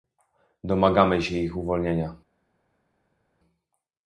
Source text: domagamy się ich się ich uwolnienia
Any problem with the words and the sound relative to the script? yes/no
yes